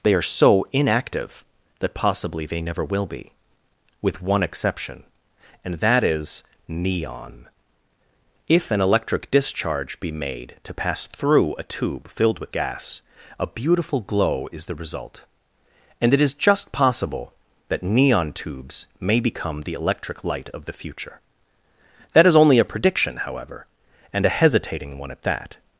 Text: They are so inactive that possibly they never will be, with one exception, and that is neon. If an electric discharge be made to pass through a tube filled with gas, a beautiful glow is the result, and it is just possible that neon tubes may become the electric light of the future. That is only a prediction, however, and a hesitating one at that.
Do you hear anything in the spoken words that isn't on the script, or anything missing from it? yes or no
no